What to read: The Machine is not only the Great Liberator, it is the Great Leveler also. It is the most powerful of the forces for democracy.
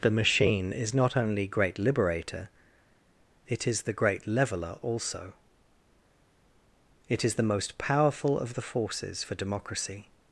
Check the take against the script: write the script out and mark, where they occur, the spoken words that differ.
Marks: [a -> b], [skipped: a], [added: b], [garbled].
The Machine is not only [skipped: the] Great Liberator, it is the Great Leveler also. It is the most powerful of the forces for democracy.